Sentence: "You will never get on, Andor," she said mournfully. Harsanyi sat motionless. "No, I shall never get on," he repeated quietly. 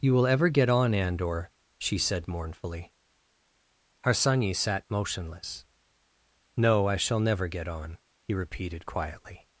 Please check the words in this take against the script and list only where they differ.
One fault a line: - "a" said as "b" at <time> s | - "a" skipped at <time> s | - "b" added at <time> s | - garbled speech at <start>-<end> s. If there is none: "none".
- "never" said as "ever" at 0.2 s